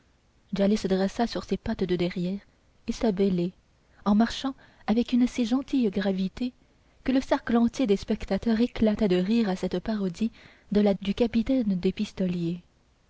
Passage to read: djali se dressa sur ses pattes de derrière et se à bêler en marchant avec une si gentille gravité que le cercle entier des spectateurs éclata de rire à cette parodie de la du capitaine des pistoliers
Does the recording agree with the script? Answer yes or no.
yes